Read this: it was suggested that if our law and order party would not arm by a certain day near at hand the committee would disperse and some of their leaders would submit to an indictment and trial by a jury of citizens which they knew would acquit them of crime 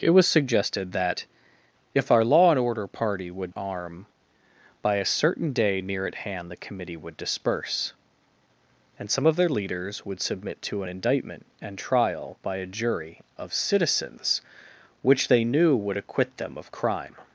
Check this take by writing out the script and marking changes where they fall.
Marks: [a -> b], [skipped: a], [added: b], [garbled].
it was suggested that if our law and order party would [skipped: not] arm by a certain day near at hand the committee would disperse and some of their leaders would submit to an indictment and trial by a jury of citizens which they knew would acquit them of crime